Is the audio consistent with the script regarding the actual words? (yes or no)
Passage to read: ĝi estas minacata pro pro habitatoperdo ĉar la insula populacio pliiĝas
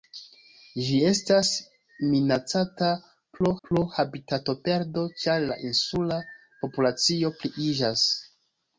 yes